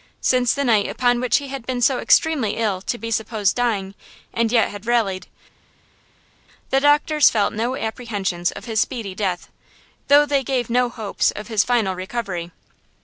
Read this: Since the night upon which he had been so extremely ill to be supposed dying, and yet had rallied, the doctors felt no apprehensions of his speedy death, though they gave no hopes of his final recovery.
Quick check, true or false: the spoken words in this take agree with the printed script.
true